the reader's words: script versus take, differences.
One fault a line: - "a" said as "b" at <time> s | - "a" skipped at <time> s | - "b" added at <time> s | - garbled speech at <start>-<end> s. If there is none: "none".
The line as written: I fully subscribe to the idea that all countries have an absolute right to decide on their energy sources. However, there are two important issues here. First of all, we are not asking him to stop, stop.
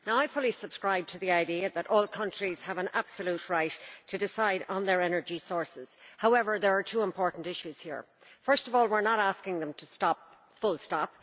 - "him" said as "them" at 9.6 s
- "full" added at 10.6 s